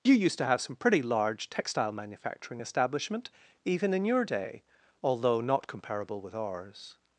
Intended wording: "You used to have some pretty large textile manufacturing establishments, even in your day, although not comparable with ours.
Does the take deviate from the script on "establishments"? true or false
true